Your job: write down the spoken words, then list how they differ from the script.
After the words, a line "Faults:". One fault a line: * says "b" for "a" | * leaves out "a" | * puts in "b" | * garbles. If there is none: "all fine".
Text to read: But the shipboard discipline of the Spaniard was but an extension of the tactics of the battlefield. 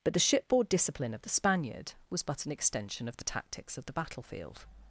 But the shipboard discipline of the Spaniard was but an extension of the tactics of the battlefield.
Faults:
all fine